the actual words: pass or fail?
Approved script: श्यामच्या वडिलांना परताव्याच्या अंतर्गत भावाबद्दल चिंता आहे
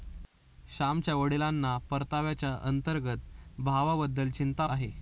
pass